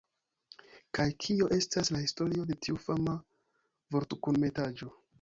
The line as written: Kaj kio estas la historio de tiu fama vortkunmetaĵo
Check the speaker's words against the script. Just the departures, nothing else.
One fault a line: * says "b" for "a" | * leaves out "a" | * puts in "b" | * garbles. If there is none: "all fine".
all fine